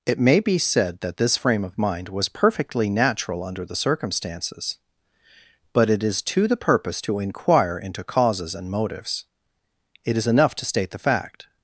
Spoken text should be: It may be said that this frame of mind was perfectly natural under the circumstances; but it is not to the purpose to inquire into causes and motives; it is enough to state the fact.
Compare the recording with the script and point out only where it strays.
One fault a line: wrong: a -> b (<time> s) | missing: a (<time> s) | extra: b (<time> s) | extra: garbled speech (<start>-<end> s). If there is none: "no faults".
missing: not (6.2 s)